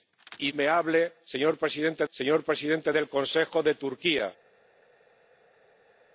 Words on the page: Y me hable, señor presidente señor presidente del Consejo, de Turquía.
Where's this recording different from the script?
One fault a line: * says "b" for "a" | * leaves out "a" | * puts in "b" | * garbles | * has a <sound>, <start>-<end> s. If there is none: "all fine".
all fine